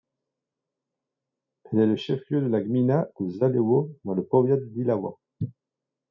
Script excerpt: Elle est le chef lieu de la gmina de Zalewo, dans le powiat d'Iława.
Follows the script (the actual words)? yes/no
yes